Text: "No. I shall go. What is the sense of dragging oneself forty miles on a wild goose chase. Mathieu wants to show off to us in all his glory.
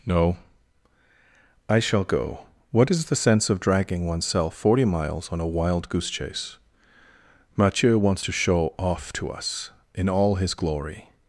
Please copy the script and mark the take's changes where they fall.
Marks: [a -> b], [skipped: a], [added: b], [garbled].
"No. I shall go. What is the sense of dragging oneself forty miles on a wild goose chase. Mathieu wants to show off to us in all his glory.